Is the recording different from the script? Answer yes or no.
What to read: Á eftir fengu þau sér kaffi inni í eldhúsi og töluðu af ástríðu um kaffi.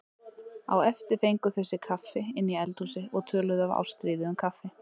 no